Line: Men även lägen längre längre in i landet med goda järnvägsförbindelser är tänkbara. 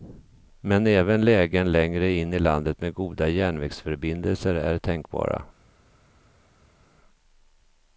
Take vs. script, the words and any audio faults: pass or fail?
fail